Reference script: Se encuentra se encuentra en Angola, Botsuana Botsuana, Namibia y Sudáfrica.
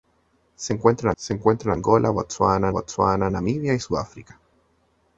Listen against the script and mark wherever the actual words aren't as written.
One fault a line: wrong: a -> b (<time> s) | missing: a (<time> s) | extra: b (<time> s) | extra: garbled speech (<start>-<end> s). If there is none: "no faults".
no faults